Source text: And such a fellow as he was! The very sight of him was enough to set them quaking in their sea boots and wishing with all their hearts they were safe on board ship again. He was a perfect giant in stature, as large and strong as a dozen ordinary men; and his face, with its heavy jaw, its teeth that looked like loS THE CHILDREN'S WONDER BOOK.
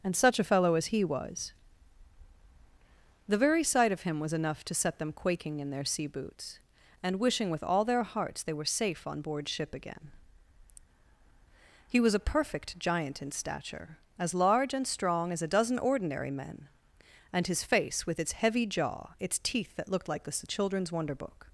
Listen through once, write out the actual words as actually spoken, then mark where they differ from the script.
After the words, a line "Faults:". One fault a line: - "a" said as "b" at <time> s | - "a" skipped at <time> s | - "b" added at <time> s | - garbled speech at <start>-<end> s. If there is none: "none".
And such a fellow as he was! The very sight of him was enough to set them quaking in their sea boots and wishing with all their hearts they were safe on board ship again. He was a perfect giant in stature, as large and strong as a dozen ordinary men; and his face, with its heavy jaw, its teeth that looked like THE CHILDREN'S WONDER BOOK.
Faults:
- "loS" skipped at 20.2 s